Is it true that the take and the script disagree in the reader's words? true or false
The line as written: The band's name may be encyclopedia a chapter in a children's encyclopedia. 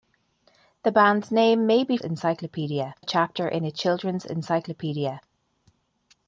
false